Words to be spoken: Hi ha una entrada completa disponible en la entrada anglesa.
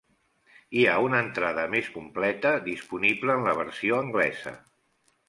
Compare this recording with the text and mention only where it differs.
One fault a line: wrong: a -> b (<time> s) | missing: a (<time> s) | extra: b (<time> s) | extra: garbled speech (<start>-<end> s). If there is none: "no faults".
extra: més (1.7 s)
wrong: entrada -> versió (3.6 s)